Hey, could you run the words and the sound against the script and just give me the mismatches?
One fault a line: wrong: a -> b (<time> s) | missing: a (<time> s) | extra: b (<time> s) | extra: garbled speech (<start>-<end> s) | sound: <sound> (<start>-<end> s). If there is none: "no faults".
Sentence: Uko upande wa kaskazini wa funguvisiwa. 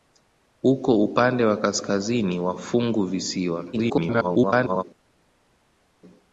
extra: garbled speech (3.7-4.8 s)